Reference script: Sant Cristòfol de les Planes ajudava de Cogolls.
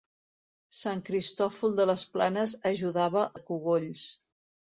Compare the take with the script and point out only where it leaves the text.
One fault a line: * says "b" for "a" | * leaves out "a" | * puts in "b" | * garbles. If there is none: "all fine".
all fine